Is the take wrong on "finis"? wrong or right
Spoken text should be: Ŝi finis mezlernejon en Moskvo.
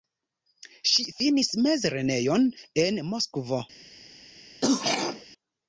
right